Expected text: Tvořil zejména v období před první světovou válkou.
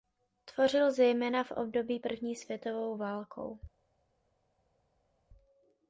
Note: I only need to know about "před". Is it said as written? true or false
false